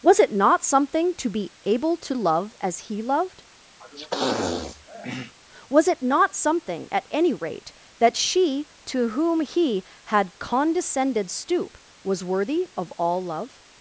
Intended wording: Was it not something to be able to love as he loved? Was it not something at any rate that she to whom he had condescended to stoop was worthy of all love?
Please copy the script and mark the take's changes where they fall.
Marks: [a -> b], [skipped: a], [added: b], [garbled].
Was it not something to be able to love as he loved? Was it not something at any rate that she to whom he had condescended [skipped: to] stoop was worthy of all love?